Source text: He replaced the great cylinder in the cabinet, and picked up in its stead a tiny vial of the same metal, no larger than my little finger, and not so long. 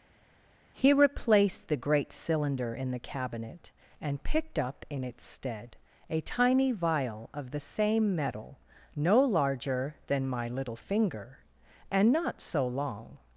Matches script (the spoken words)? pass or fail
pass